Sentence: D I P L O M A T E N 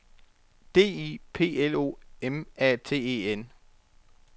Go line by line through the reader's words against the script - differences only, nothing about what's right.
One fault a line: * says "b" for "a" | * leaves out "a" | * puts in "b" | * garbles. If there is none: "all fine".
all fine